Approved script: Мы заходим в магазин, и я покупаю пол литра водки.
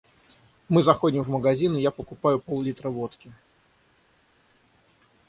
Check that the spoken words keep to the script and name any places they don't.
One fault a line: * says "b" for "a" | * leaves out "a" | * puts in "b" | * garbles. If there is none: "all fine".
all fine